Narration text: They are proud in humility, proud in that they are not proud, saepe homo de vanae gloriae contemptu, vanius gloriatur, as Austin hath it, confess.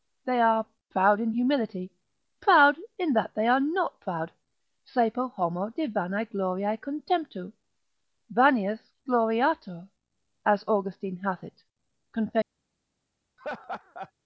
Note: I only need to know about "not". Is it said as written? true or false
true